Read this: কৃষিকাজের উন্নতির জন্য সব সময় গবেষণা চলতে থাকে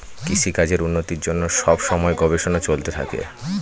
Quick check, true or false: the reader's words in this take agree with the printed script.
true